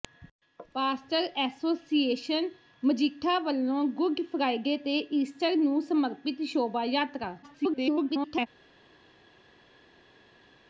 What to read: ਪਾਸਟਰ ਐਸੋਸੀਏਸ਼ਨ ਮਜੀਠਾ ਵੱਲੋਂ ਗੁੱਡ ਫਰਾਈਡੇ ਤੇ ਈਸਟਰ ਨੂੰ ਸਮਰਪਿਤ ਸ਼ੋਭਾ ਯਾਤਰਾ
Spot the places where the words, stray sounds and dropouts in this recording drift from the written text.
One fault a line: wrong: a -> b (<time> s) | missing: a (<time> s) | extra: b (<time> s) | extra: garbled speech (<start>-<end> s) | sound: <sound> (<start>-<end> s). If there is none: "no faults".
extra: garbled speech (7.4-8.5 s)